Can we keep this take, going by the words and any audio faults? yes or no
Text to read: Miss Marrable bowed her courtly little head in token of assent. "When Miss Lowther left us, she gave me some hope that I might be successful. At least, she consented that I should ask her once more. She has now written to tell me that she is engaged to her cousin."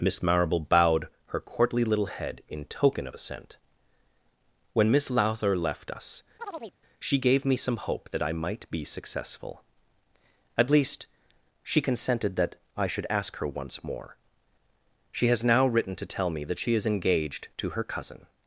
no